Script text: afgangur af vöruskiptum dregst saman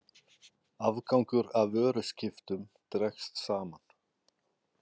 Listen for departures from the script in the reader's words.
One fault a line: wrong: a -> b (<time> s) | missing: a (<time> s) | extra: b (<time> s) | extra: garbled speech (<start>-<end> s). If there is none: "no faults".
no faults